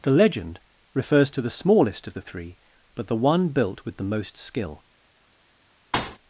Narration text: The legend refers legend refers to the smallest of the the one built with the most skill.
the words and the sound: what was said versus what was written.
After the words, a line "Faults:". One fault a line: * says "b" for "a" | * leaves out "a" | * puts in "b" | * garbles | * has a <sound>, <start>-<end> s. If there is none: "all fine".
The legend refers to the smallest of the three, but the one built with the most skill.
Faults:
* leaves out "legend refers"
* puts in "three but"
* has a thud, 5.9-6.2 s